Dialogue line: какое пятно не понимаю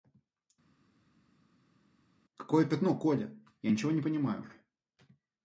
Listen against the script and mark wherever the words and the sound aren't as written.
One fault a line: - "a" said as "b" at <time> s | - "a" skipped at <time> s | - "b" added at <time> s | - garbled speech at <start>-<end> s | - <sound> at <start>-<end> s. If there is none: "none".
- "коля я ничего" added at 3.0 s